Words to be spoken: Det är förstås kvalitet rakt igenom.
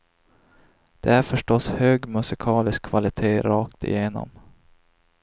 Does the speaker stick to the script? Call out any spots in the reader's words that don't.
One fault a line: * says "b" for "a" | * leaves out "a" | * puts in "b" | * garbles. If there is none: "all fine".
* puts in "hög musikalisk"